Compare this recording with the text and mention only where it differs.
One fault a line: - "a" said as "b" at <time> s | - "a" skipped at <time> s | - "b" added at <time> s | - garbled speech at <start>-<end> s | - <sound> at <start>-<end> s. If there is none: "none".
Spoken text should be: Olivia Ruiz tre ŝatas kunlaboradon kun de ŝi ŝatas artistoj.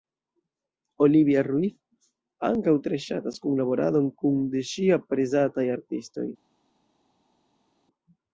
- "ankaŭ" added at 2.5 s
- "ŝatas" said as "aprezataj" at 5.0 s